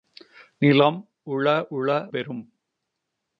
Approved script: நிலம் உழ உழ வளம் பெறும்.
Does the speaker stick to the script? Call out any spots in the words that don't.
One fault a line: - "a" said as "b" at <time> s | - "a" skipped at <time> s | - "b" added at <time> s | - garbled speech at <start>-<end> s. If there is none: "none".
- "வளம்" skipped at 2.1 s